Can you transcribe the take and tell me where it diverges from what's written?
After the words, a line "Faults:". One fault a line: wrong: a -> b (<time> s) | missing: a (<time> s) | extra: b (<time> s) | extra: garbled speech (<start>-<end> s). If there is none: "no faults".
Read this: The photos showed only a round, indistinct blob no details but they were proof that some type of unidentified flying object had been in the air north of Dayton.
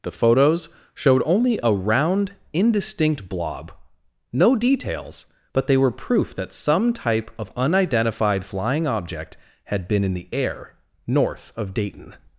The photos showed only a round, indistinct blob no details but they were proof that some type of unidentified flying object had been in the air north of Dayton.
Faults:
no faults